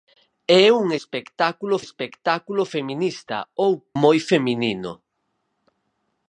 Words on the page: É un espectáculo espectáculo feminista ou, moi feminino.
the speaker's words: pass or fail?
pass